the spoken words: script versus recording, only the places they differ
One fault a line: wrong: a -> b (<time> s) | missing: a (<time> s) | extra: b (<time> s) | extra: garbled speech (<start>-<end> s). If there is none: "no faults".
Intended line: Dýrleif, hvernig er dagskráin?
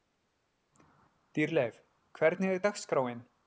no faults